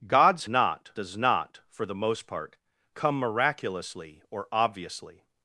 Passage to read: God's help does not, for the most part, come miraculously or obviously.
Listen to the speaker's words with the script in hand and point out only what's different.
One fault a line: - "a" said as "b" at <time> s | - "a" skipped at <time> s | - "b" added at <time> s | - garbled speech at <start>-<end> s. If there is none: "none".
- "help" said as "not" at 0.5 s